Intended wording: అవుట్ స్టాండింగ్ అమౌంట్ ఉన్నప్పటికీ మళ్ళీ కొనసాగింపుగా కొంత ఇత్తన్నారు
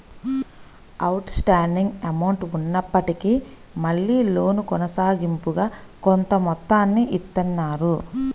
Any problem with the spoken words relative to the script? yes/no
yes